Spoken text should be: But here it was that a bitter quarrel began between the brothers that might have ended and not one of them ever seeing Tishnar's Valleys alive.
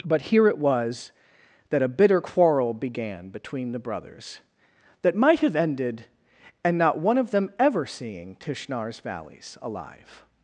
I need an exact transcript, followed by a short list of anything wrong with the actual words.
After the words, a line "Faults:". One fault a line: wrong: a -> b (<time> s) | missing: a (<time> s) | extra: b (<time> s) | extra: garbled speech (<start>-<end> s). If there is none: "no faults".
But here it was that a bitter quarrel began between the brothers that might have ended and not one of them ever seeing Tishnar's Valleys alive.
Faults:
no faults